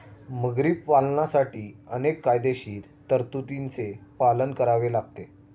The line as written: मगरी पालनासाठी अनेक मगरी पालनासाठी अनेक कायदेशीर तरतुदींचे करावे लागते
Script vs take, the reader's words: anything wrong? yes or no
yes